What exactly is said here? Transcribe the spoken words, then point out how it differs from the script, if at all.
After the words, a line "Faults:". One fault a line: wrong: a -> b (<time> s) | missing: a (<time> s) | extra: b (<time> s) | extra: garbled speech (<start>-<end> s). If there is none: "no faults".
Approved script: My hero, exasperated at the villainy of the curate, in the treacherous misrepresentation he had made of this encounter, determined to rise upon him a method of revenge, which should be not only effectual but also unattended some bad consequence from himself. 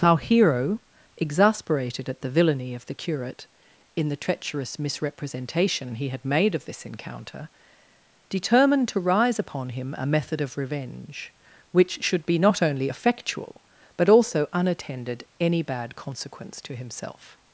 Our hero, exasperated at the villainy of the curate, in the treacherous misrepresentation he had made of this encounter, determined to rise upon him a method of revenge, which should be not only effectual but also unattended any bad consequence to himself.
Faults:
wrong: My -> Our (0.0 s)
wrong: some -> any (15.4 s)
wrong: from -> to (16.6 s)